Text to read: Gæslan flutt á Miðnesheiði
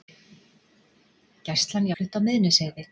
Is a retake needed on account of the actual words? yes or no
no